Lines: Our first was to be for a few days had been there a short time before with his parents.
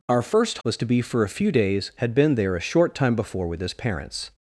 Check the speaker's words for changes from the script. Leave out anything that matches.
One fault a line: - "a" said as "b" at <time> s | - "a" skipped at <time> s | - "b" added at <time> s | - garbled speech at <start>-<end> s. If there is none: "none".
none